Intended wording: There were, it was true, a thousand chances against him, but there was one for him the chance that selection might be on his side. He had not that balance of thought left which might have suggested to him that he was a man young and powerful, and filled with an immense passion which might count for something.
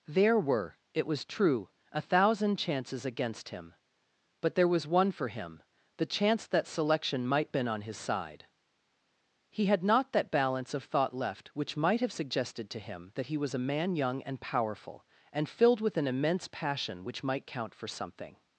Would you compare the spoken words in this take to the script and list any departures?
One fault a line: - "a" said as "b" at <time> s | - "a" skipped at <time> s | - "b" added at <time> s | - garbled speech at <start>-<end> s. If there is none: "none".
- "be" said as "been" at 7.5 s